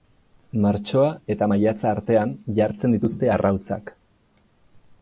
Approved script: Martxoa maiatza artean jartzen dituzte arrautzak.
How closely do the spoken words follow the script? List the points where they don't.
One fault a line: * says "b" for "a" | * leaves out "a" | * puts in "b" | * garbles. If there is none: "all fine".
* puts in "eta"